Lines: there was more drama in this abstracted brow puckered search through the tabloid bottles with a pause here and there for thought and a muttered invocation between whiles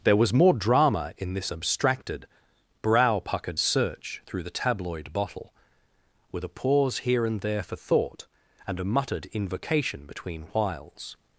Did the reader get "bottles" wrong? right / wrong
wrong